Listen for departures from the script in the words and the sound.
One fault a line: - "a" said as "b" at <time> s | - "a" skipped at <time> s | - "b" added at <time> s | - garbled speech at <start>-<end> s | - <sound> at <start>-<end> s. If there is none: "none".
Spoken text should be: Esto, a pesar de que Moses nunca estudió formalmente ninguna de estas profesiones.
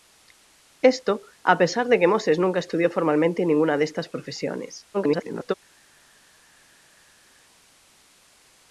- garbled speech at 4.9-5.5 s